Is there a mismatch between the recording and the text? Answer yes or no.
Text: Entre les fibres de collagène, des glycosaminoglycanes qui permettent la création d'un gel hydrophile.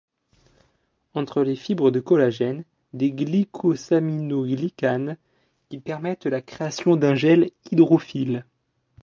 no